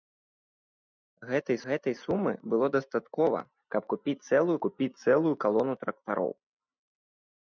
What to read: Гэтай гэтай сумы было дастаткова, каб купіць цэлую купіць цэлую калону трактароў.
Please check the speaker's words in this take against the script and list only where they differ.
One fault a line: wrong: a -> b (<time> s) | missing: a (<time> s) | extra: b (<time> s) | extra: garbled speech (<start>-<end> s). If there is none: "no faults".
no faults